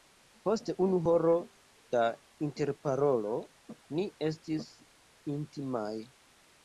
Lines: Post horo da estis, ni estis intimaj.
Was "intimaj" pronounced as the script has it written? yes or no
yes